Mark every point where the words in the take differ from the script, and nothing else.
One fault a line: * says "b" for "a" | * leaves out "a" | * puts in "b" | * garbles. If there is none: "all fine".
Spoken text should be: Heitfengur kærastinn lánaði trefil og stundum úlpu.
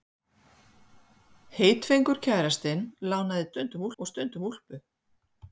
* says "stundum" for "trefil"